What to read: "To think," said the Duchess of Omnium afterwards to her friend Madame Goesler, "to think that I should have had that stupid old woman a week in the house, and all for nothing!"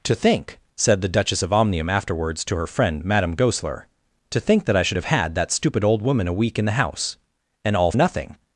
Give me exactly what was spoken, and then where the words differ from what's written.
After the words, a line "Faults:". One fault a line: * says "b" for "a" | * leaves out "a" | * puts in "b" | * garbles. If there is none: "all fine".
"To think," said the Duchess of Omnium afterwards to her friend Madame Goesler, "to think that I should have had that stupid old woman a week in the house, and all nothing!"
Faults:
* leaves out "for"